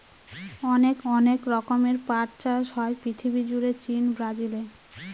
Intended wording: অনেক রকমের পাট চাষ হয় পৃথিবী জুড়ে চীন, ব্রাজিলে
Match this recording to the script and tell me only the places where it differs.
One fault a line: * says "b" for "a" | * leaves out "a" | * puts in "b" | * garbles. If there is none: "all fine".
* puts in "অনেক"